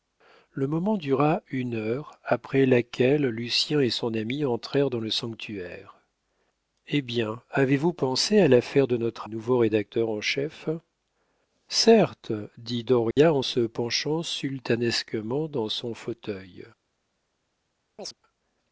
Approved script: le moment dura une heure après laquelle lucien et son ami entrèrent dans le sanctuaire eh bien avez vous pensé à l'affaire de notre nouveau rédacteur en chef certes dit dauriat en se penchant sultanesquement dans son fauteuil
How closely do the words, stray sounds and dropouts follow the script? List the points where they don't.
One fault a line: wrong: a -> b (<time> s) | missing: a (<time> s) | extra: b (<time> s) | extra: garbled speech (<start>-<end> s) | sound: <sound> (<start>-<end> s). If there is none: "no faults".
sound: dropout (13.1-13.2 s)
sound: chirp (18.0-18.1 s)